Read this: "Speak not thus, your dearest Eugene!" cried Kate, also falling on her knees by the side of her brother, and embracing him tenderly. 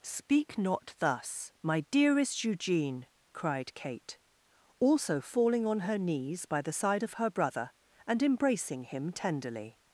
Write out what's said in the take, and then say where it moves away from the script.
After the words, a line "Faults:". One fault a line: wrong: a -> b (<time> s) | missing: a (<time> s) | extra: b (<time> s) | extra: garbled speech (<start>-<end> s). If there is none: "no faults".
"Speak not thus, my dearest Eugene!" cried Kate, also falling on her knees by the side of her brother, and embracing him tenderly.
Faults:
wrong: your -> my (1.6 s)